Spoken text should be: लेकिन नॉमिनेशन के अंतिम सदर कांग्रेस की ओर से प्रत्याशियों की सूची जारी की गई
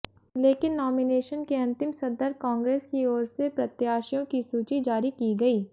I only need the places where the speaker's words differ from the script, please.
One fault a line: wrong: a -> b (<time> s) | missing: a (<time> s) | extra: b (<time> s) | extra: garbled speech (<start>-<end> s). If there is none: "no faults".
no faults